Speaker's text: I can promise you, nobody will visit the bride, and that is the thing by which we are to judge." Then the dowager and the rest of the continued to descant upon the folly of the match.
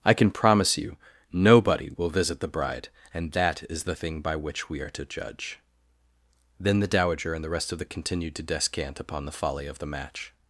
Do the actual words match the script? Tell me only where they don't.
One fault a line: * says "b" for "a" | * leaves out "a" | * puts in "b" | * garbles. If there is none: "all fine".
all fine